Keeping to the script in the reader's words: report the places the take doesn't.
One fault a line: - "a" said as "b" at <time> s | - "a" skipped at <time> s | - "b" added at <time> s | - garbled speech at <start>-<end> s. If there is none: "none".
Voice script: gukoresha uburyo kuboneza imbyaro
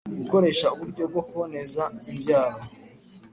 - "bwo" added at 1.1 s